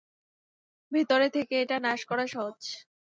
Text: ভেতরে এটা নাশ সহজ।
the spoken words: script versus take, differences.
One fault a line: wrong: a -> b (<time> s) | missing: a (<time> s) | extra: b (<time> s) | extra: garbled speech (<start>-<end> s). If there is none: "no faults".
extra: থেকে (1.3 s)
extra: করা (2.1 s)